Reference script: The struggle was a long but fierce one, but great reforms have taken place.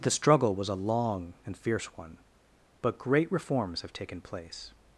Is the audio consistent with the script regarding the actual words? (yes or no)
no